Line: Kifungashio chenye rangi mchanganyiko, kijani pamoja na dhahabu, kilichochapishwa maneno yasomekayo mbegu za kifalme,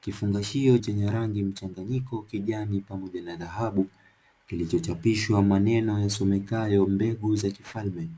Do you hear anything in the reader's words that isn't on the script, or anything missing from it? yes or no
no